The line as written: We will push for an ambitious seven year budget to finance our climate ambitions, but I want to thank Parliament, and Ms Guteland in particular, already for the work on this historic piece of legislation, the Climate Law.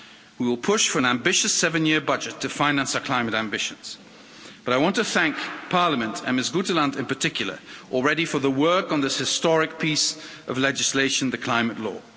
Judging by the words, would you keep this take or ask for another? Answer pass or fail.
pass